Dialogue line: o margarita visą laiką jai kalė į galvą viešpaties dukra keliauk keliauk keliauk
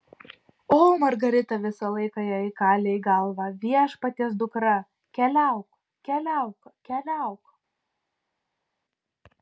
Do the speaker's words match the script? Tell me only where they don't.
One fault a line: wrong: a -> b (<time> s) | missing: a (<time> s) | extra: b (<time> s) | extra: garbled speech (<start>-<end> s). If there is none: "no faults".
no faults